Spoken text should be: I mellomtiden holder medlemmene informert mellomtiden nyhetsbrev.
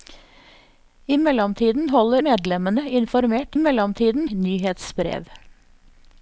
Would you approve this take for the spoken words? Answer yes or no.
yes